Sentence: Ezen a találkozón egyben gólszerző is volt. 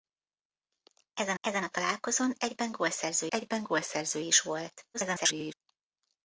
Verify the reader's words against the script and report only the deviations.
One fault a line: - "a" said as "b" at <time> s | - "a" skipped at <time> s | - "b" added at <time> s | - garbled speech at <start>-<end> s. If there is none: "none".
- "ezen" added at 1.4 s
- "egyben gólszerző" added at 3.3 s
- garbled speech at 4.9-5.5 s